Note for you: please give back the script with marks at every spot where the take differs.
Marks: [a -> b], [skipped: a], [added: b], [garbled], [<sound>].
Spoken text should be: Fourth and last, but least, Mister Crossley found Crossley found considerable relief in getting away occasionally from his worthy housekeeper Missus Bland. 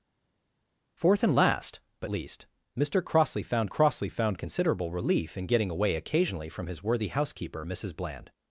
Fourth and last, but least, Mister Crossley found Crossley found considerable relief in getting away occasionally from his worthy housekeeper Missus Bland.